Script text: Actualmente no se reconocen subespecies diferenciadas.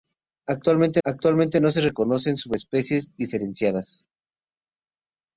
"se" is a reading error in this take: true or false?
false